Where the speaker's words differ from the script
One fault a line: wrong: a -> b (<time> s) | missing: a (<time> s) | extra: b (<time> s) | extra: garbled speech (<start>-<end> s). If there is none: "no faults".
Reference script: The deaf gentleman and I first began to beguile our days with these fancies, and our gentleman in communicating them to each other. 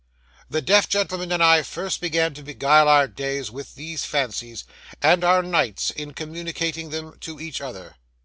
wrong: gentleman -> nights (5.4 s)